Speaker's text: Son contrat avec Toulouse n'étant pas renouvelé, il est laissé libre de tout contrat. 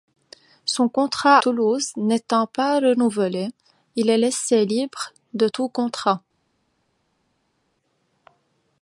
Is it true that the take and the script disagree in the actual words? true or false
true